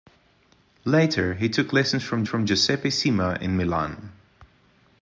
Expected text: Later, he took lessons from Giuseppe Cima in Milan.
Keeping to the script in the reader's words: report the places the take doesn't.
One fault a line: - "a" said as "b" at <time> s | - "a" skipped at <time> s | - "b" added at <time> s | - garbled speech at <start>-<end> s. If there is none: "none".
- "from" added at 2.2 s